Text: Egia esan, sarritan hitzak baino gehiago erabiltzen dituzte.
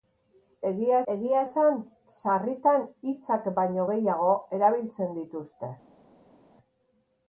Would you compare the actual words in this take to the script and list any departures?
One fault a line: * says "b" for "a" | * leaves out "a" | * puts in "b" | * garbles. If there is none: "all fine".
* puts in "egia"